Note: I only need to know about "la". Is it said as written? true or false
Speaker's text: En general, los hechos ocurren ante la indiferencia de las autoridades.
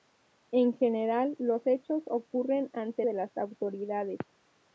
false